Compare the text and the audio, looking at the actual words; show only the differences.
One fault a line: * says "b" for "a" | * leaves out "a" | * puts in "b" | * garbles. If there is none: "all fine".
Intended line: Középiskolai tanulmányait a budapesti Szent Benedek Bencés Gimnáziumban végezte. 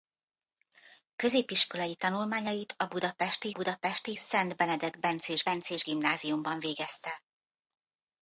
* puts in "budapesti"
* puts in "Bencés"